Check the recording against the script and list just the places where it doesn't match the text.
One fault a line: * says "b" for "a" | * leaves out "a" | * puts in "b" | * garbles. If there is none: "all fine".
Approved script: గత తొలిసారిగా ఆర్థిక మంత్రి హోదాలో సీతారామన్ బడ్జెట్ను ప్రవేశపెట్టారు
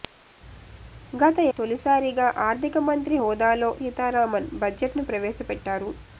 all fine